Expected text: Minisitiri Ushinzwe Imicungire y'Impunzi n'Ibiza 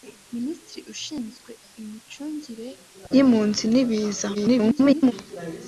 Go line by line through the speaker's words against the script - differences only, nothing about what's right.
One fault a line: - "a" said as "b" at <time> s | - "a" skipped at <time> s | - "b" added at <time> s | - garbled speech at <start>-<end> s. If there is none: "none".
- garbled speech at 4.3-5.1 s